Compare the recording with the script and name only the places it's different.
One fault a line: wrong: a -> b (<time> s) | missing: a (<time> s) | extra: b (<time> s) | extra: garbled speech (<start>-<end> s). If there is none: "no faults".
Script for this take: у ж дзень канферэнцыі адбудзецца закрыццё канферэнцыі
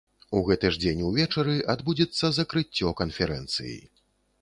extra: гэты (0.5 s)
wrong: канферэнцыі -> увечары (1.1 s)